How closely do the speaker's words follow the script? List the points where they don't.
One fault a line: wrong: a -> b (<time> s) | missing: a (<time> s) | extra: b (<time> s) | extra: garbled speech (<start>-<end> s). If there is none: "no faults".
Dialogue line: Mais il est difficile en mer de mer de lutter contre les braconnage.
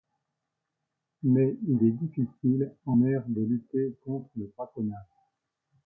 missing: mer de (3.4 s)
wrong: les -> le (4.4 s)